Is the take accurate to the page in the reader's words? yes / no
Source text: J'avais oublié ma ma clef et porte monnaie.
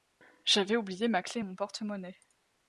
no